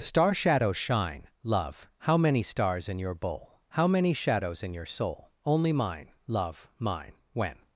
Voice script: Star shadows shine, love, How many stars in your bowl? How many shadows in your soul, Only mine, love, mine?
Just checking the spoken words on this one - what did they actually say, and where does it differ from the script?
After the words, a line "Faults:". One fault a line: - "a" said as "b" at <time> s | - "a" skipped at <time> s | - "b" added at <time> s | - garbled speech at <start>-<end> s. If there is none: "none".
Star shadows shine, love, How many stars in your bowl? How many shadows in your soul, Only mine, love, mine? When
Faults:
- "When" added at 7.3 s